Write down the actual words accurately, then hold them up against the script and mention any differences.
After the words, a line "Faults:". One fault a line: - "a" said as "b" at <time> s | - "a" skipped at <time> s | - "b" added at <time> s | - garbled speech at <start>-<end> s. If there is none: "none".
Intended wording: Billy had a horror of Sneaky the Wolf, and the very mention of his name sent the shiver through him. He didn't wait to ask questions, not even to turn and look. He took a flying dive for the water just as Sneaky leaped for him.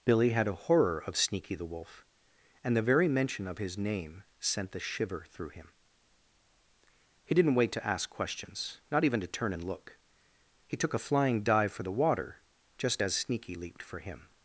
Billy had a horror of Sneaky the Wolf, and the very mention of his name sent the shiver through him. He didn't wait to ask questions, not even to turn and look. He took a flying dive for the water just as Sneaky leaped for him.
Faults:
none